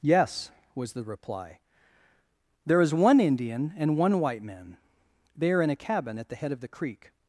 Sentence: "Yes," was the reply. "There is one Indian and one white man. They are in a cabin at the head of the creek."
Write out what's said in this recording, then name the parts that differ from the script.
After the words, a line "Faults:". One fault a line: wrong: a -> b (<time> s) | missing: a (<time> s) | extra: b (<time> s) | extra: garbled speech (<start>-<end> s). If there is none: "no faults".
"Yes," was the reply. "There is one Indian and one white man. They are in a cabin at the head of the creek."
Faults:
no faults